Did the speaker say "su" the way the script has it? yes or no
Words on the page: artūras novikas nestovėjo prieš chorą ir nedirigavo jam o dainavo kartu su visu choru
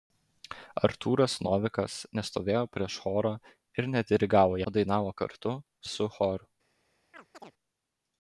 no